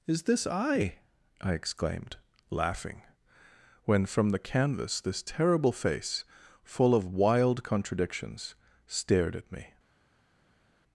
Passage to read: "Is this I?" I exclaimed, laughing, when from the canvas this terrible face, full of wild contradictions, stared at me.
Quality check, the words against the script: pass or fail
pass